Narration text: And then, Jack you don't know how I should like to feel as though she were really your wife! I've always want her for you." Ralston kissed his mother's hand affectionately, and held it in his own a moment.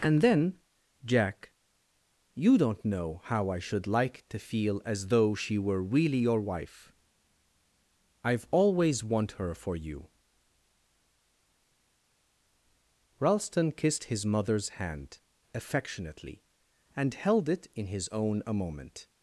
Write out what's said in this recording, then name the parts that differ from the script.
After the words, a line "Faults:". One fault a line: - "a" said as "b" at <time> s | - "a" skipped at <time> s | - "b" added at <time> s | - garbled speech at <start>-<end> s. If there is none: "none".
And then, Jack you don't know how I should like to feel as though she were really your wife! I've always want her for you." Ralston kissed his mother's hand affectionately, and held it in his own a moment.
Faults:
none